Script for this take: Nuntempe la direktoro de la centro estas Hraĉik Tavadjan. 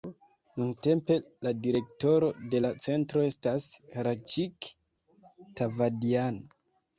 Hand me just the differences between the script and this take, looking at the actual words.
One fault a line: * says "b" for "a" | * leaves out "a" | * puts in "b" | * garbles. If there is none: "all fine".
all fine